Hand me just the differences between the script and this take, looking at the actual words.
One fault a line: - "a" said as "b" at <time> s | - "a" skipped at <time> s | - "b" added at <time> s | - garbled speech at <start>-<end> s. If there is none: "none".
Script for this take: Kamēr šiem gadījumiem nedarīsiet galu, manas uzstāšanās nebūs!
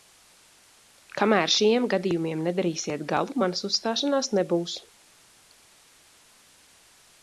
none